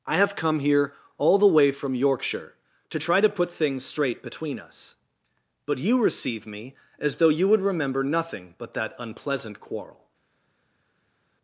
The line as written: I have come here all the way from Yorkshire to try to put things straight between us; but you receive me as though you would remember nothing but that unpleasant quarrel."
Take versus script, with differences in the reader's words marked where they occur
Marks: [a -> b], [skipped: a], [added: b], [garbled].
I have come here all the way from Yorkshire to try to put things straight between us; but you receive me as though you would remember nothing but that unpleasant quarrel."